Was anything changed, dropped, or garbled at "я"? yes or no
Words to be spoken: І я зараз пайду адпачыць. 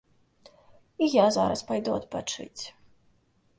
no